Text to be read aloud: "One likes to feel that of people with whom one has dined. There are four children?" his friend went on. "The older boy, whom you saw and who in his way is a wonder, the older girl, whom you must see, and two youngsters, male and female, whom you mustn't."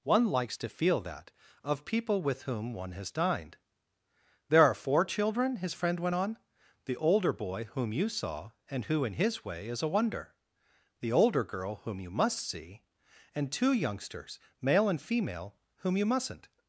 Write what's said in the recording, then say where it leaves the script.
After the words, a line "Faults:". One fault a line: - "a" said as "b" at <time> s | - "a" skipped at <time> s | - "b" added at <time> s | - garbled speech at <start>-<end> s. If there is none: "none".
"One likes to feel that of people with whom one has dined. There are four children?" his friend went on. "The older boy, whom you saw and who in his way is a wonder, the older girl, whom you must see, and two youngsters, male and female, whom you mustn't."
Faults:
none